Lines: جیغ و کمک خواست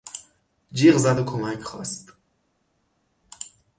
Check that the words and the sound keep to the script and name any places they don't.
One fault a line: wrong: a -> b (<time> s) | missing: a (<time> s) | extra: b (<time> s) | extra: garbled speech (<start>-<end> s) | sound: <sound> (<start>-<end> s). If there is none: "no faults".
extra: زد (1.0 s)